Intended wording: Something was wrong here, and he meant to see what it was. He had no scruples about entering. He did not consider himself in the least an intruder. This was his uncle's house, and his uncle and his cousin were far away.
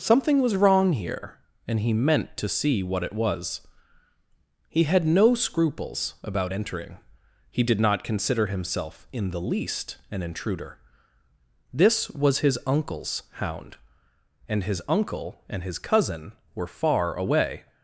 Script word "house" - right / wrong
wrong